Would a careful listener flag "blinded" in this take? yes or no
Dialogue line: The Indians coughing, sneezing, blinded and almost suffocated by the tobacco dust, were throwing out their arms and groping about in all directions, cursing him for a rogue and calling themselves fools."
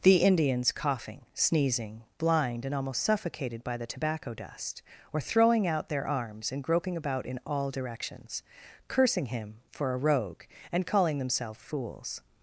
yes